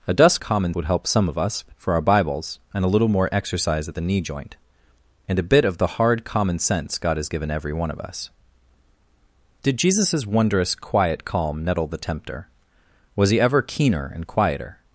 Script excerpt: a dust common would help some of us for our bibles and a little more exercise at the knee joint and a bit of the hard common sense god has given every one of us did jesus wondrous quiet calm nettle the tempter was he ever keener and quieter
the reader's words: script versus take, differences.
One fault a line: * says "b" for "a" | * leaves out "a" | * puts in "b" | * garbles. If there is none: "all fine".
all fine